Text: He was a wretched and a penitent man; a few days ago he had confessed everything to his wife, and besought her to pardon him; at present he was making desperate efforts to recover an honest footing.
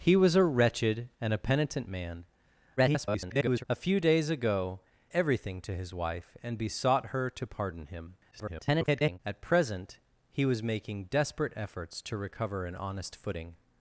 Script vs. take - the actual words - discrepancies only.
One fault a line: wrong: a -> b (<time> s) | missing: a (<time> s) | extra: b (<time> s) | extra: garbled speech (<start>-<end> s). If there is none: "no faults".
extra: garbled speech (2.8-3.6 s)
missing: he had confessed (4.8 s)
extra: garbled speech (8.3-9.2 s)